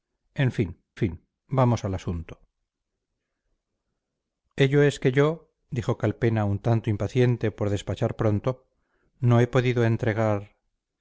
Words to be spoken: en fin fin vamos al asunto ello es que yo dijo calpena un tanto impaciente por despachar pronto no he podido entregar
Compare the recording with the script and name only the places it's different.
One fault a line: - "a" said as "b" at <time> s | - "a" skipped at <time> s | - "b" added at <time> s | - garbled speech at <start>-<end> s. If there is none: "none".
none